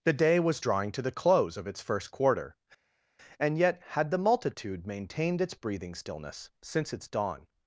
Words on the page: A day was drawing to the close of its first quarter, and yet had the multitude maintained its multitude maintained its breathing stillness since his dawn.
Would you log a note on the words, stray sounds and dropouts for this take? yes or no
yes